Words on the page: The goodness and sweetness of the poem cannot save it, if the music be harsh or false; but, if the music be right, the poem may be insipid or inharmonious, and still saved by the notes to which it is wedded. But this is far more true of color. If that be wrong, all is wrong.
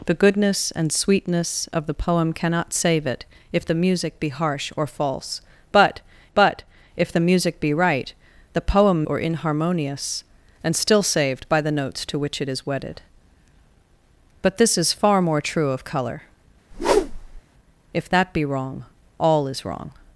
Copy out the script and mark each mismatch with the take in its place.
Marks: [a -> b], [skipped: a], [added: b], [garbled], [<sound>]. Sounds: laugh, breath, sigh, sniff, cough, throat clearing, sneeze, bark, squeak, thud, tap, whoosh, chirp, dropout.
The goodness and sweetness of the poem cannot save it, if the music be harsh or false; but, [added: but] if the music be right, the poem [skipped: may be insipid] or inharmonious, and still saved by the notes to which it is wedded. But this is far more true of color. [whoosh] If that be wrong, all is wrong.